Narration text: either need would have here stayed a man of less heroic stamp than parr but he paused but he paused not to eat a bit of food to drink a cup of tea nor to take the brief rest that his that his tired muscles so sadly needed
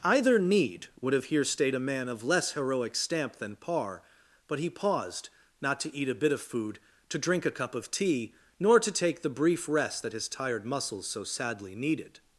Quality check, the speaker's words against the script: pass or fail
fail